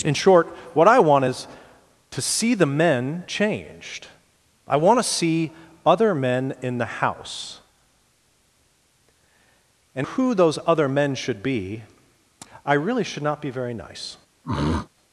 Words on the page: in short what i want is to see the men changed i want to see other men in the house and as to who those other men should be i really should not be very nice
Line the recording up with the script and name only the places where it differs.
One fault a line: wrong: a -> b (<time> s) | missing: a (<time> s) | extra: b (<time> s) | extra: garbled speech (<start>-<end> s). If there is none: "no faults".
missing: as to (10.1 s)